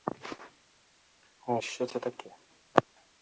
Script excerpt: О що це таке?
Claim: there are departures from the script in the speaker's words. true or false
false